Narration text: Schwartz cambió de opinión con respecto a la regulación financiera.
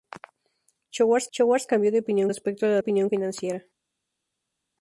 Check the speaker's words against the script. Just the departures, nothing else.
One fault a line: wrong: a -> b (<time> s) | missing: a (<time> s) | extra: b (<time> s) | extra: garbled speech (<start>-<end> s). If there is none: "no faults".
extra: schwartz (1.3 s)
missing: con (2.3 s)
wrong: regulación -> opinión (2.8 s)